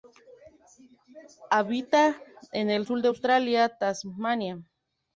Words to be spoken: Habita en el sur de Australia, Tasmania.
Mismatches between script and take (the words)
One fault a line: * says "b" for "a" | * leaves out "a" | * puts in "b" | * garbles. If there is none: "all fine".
all fine